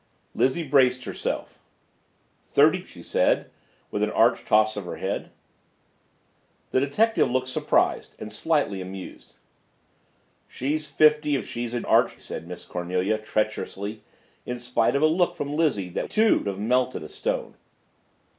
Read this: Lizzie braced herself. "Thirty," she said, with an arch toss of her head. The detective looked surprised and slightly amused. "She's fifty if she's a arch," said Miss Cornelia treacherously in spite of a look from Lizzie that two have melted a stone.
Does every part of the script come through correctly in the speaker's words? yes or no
yes